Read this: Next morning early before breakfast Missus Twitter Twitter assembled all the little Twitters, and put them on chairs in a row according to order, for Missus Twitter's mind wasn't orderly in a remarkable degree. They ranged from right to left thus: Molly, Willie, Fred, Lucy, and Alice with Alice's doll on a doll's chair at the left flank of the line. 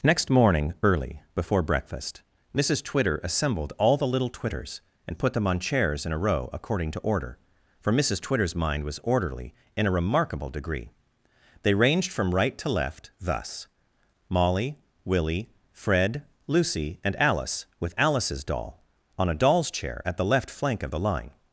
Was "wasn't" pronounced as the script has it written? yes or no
no